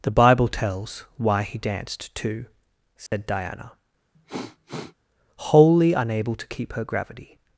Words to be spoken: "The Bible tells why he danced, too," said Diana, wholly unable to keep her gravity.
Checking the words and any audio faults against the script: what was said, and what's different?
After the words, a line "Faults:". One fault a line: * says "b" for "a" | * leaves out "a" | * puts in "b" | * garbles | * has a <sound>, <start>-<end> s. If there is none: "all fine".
"The Bible tells why he danced, too," said Diana, wholly unable to keep her gravity.
Faults:
* has a dropout, 3.1-3.1 s
* has a sniff, 4.1-4.9 s